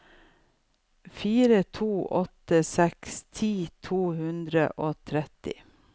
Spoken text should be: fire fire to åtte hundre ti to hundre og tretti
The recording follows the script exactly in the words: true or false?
false